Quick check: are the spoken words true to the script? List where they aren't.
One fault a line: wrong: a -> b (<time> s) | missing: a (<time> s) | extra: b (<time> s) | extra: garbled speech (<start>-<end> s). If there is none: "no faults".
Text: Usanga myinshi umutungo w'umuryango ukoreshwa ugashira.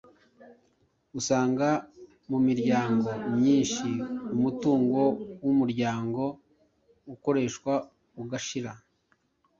extra: mu miryango (2.3 s)